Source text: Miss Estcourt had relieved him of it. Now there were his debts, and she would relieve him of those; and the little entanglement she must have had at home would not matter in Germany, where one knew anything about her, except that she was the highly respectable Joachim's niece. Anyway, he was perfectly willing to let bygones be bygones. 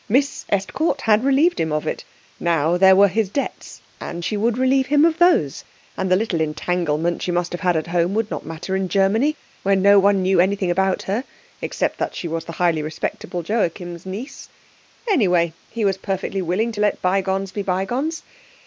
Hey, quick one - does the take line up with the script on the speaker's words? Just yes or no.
no